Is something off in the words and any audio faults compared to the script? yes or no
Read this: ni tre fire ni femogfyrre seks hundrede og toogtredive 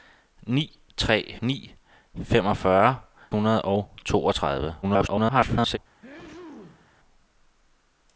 yes